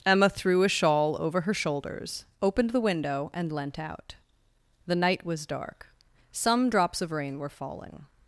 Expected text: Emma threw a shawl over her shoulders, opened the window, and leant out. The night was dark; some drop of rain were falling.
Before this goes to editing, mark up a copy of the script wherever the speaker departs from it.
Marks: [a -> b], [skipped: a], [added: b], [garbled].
Emma threw a shawl over her shoulders, opened the window, and leant out. The night was dark; some [drop -> drops] of rain were falling.